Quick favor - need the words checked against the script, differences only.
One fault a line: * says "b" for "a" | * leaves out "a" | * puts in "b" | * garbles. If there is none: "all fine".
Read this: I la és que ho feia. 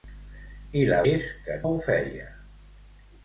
all fine